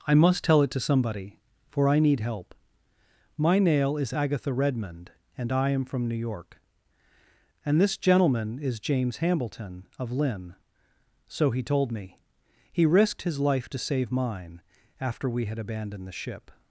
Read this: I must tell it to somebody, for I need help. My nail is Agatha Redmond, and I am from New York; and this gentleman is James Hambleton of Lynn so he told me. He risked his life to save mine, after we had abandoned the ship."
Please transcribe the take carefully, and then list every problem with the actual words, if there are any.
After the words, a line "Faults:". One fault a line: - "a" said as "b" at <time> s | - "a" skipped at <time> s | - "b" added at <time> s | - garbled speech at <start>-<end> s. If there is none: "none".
I must tell it to somebody, for I need help. My nail is Agatha Redmond, and I am from New York; and this gentleman is James Hambleton of Lynn so he told me. He risked his life to save mine, after we had abandoned the ship."
Faults:
none